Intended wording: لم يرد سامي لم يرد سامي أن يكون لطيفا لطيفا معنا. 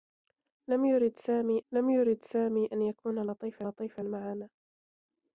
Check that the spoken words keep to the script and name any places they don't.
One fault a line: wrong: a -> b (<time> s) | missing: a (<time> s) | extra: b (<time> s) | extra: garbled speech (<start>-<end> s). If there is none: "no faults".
no faults